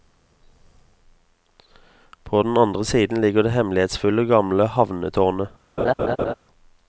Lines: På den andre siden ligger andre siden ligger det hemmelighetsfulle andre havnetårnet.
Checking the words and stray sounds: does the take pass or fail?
fail